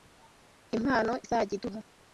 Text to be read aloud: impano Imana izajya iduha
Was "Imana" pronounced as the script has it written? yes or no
no